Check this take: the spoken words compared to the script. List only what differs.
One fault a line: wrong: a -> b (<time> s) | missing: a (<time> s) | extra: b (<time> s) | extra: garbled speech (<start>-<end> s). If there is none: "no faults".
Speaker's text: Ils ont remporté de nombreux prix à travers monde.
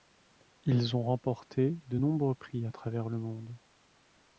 extra: le (3.1 s)